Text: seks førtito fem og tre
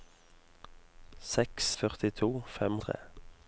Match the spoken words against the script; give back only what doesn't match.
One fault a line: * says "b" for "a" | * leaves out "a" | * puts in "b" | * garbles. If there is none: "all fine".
all fine